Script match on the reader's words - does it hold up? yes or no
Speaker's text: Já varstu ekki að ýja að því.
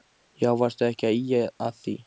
yes